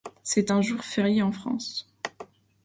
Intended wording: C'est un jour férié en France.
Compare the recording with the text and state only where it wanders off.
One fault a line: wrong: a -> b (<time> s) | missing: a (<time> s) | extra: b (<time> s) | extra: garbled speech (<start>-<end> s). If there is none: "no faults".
no faults